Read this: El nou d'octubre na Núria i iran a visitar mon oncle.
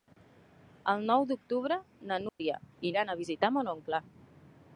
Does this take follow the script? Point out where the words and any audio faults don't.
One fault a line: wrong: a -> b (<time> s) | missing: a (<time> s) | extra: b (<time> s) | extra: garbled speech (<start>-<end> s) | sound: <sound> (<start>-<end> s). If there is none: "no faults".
sound: dropout (2.3-2.4 s)